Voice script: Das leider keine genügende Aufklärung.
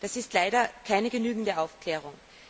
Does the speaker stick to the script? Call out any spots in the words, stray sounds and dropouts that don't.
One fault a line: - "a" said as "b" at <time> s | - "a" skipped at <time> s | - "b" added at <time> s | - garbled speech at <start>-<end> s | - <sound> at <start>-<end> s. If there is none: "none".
- "ist" added at 0.2 s